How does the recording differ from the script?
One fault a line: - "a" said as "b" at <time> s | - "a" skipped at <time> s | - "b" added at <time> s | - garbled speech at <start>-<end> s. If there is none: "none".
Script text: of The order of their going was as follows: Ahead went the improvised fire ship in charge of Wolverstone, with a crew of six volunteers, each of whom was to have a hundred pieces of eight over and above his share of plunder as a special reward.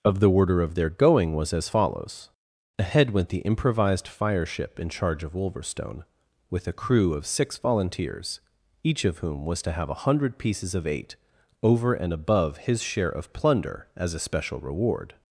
none